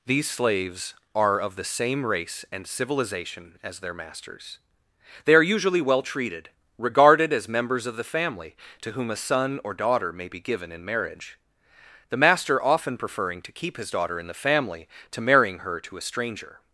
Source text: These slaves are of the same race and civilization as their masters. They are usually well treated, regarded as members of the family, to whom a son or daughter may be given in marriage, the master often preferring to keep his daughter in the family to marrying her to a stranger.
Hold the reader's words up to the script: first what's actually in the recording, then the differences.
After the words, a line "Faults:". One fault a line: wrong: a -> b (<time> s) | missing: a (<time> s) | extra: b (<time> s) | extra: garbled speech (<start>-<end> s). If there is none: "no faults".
These slaves are of the same race and civilization as their masters. They are usually well treated, regarded as members of the family, to whom a son or daughter may be given in marriage, the master often preferring to keep his daughter in the family to marrying her to a stranger.
Faults:
no faults